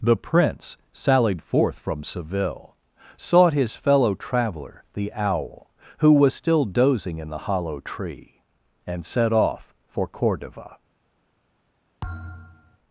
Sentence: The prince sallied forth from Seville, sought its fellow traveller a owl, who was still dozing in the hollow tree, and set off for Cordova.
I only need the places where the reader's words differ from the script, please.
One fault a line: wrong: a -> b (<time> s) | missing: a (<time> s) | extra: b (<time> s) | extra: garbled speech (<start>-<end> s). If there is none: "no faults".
wrong: its -> his (3.5 s)
wrong: a -> the (4.9 s)